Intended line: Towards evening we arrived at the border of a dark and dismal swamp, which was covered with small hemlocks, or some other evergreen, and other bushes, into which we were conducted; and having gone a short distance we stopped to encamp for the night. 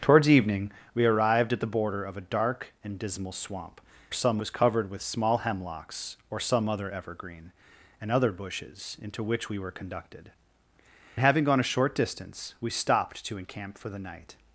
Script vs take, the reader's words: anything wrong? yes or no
yes